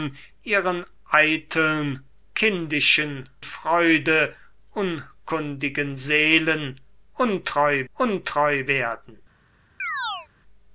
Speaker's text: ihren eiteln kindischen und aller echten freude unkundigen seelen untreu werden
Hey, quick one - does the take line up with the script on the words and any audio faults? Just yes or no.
no